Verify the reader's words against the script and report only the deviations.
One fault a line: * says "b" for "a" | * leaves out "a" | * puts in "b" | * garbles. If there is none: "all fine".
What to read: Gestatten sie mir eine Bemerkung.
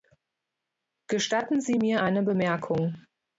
all fine